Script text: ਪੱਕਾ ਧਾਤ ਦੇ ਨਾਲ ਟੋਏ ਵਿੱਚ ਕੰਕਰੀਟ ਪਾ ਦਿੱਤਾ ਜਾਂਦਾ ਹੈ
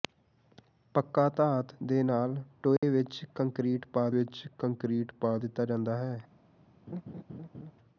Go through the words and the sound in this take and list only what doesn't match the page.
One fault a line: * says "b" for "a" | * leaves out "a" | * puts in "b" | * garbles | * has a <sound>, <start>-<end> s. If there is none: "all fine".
* has a dropout, 2.8-2.8 s
* puts in "ਵਿੱਚ ਕੰਕਰੀਟ ਪਾ"
* has a laugh, 6.9-7.7 s